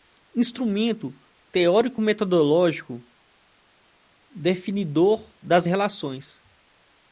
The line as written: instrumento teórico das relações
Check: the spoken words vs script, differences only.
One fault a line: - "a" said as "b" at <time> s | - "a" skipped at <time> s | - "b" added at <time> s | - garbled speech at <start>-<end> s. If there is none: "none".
- "metodológico definidor" added at 2.0 s